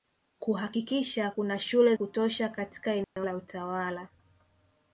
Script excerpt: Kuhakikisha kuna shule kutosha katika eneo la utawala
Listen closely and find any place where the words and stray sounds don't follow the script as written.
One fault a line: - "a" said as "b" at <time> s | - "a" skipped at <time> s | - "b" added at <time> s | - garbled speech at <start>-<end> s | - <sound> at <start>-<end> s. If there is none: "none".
- dropout at 3.0-3.2 s